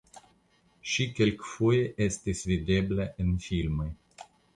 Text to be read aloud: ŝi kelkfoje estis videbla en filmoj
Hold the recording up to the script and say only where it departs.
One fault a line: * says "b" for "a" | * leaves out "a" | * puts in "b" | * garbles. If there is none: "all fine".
all fine